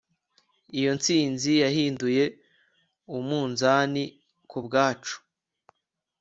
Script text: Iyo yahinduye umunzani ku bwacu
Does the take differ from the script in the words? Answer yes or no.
yes